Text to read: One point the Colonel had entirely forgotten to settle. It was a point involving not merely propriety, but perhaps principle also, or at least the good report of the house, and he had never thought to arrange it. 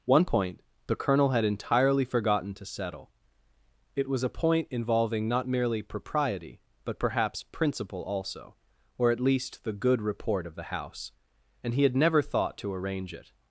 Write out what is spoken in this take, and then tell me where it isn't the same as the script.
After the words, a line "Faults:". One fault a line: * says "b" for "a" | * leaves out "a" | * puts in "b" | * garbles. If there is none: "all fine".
One point the Colonel had entirely forgotten to settle. It was a point involving not merely propriety, but perhaps principle also, or at least the good report of the house, and he had never thought to arrange it.
Faults:
all fine